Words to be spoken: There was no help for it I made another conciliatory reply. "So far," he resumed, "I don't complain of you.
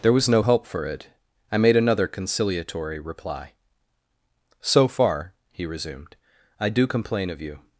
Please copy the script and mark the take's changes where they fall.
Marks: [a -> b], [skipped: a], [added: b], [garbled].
There was no help for it I made another conciliatory reply. "So far," he resumed, "I [don't -> do] complain of you.